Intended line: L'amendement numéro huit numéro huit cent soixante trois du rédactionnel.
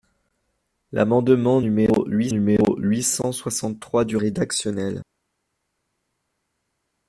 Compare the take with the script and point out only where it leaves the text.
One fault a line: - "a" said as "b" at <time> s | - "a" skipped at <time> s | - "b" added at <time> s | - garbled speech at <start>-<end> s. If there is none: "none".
none